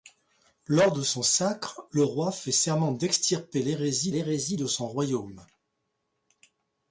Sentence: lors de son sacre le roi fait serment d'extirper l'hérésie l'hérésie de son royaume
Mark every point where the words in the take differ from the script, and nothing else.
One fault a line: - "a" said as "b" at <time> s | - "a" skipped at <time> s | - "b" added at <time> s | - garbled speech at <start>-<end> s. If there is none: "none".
none